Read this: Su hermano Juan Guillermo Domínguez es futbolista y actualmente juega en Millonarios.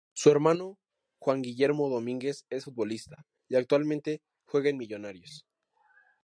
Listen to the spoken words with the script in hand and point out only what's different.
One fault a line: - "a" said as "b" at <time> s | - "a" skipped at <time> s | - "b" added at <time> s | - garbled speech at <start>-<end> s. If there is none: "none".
none